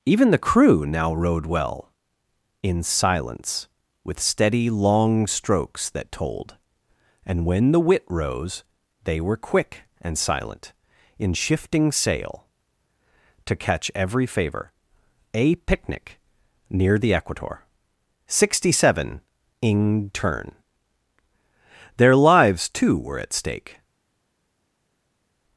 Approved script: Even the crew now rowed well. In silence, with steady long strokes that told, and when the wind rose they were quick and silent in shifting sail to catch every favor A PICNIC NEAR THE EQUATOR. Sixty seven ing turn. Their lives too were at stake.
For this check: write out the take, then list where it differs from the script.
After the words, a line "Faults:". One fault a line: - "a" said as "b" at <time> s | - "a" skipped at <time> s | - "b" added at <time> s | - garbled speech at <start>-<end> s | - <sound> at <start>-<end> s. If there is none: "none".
Even the crew now rowed well. In silence, with steady long strokes that told, and when the wit rose they were quick and silent in shifting sail to catch every favor A PICNIC NEAR THE EQUATOR. Sixty seven ing turn. Their lives too were at stake.
Faults:
- "wind" said as "wit" at 7.8 s